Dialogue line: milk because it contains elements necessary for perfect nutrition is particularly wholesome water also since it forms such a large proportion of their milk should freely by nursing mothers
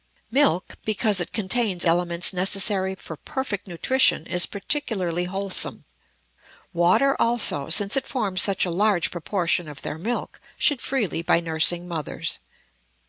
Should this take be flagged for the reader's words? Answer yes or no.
no